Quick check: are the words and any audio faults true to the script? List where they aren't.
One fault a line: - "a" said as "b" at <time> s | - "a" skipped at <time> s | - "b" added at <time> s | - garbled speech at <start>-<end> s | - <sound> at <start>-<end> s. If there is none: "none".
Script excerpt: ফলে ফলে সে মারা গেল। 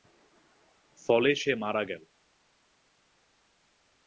- "ফলে" skipped at 1.3 s